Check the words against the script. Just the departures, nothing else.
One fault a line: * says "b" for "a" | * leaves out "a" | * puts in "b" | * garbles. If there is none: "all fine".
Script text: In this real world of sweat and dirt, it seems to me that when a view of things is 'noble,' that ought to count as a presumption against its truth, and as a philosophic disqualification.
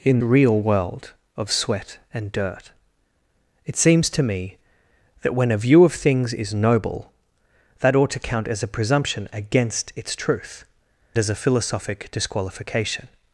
* leaves out "this"
* leaves out "and"